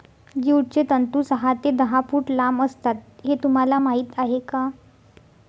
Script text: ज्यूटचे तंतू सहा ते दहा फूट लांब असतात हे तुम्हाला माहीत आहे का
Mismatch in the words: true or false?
false